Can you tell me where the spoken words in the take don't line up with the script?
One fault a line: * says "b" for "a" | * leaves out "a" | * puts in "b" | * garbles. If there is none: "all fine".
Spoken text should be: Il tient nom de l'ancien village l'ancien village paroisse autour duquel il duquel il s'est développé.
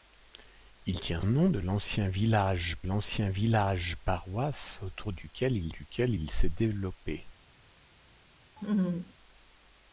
all fine